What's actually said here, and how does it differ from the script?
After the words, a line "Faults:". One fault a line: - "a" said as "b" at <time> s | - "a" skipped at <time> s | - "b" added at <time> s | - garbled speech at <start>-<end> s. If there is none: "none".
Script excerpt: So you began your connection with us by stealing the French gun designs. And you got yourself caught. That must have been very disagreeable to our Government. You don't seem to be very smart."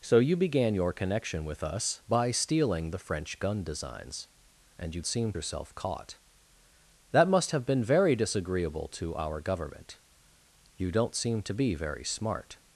So you began your connection with us by stealing the French gun designs. And you seem yourself caught. That must have been very disagreeable to our Government. You don't seem to be very smart."
Faults:
- "got" said as "seem" at 5.0 s